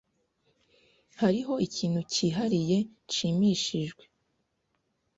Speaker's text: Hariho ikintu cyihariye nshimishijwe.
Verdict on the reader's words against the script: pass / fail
pass